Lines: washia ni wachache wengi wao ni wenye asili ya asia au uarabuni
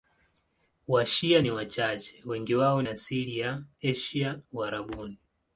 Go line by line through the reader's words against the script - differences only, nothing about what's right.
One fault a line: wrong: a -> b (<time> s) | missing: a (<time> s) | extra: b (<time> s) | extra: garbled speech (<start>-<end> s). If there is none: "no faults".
missing: ni wenye (2.8 s)
missing: au (4.4 s)